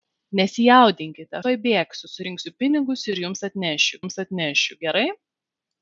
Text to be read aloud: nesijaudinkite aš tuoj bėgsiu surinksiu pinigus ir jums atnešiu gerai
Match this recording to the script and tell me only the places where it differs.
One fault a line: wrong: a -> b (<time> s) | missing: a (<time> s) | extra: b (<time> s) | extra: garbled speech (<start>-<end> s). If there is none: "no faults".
missing: aš (1.4 s)
extra: jums atnešiu (4.0 s)